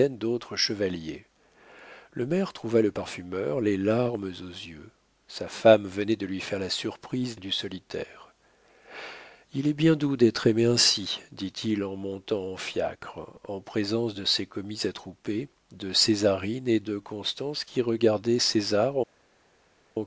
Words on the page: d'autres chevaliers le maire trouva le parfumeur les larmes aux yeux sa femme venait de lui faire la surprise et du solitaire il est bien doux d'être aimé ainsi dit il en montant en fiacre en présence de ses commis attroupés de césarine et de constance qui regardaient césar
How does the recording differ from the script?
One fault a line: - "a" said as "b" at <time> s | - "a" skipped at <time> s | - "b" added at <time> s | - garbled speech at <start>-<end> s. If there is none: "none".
none